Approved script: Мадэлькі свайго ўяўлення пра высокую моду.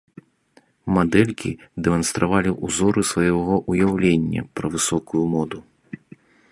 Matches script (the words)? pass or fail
fail